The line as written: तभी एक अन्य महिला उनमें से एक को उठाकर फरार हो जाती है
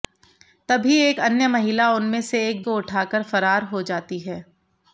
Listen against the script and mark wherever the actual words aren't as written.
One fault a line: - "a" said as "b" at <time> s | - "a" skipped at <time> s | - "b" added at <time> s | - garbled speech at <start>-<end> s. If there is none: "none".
none